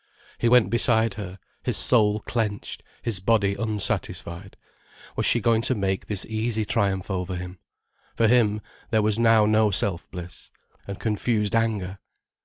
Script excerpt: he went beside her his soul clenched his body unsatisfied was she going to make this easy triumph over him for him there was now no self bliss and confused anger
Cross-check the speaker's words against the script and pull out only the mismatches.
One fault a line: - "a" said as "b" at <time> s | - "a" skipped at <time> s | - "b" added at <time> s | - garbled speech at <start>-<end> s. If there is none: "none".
none